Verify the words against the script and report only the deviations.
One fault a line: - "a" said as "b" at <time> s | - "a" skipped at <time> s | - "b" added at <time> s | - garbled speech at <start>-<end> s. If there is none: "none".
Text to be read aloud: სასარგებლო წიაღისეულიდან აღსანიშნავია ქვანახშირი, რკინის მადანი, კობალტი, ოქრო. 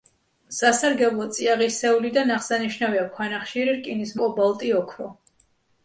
- "მადანი" skipped at 4.2 s